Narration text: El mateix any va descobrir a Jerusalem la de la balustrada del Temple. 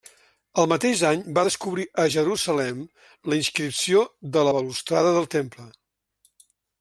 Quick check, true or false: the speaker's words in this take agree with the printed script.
false